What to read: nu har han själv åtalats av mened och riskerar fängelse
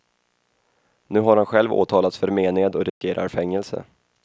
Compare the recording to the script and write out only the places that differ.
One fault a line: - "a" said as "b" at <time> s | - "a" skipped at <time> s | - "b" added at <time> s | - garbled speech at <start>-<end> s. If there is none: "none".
- "av" said as "för" at 2.2 s